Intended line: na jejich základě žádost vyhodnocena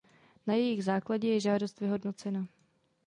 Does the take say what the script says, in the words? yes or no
no